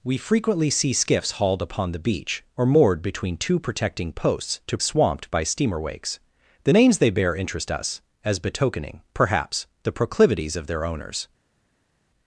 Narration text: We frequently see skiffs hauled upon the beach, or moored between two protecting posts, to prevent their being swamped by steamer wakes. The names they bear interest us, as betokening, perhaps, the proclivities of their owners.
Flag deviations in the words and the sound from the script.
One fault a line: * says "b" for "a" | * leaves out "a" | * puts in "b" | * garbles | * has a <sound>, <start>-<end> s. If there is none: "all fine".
* leaves out "prevent their being"